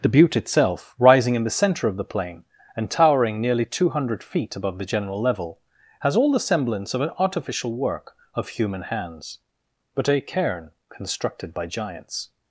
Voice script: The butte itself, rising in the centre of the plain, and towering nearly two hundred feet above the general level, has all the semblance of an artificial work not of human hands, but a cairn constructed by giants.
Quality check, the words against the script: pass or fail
fail